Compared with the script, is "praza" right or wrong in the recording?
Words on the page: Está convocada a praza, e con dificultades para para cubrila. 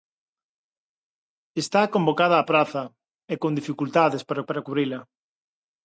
right